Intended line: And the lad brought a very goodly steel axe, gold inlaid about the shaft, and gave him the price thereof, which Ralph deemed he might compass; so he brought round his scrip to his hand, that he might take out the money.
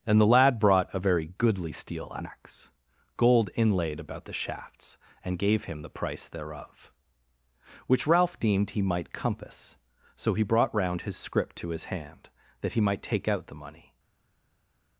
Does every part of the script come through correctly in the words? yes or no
no